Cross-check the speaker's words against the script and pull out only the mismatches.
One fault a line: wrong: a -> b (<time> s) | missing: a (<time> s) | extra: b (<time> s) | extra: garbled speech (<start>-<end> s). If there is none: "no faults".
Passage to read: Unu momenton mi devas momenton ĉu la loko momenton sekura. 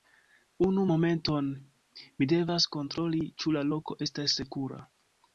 wrong: momenton -> kontroli (2.8 s)
wrong: momenton -> estas (4.1 s)